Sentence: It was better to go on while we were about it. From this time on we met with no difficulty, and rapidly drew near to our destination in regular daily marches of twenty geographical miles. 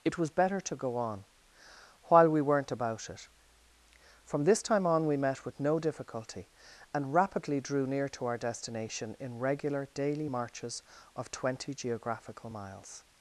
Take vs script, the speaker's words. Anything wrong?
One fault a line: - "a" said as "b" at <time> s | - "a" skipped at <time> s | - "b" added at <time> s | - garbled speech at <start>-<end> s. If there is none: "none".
- "were" said as "weren't" at 2.4 s